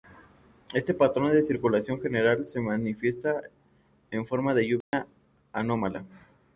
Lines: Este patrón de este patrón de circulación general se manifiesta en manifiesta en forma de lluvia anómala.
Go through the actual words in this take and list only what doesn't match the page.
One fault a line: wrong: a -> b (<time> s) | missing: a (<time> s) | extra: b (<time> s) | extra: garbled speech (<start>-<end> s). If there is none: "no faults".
missing: este patrón de (1.4 s)
missing: manifiesta en (4.2 s)